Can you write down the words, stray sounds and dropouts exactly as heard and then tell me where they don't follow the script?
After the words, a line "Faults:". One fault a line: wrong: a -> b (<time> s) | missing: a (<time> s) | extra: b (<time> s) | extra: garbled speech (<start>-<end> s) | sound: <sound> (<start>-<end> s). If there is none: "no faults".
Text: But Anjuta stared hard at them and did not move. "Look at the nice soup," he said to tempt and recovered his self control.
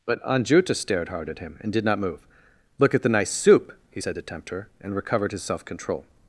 But Anjuta stared hard at him and did not move. "Look at the nice soup," he said to tempt her and recovered his self control.
Faults:
wrong: them -> him (1.4 s)
extra: her (4.5 s)